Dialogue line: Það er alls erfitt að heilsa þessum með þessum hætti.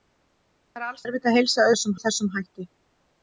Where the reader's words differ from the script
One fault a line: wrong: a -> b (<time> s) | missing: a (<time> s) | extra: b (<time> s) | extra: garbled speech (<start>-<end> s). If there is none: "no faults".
no faults